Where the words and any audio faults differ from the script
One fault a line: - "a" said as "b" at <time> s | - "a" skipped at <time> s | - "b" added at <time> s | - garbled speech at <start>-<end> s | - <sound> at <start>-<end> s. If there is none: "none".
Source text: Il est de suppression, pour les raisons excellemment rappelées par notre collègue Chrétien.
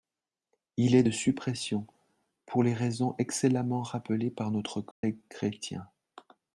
- dropout at 4.9-5.0 s